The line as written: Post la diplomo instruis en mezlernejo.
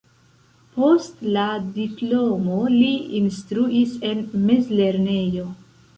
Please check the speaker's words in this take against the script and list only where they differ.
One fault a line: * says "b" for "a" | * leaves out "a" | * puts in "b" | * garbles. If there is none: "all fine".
* puts in "li"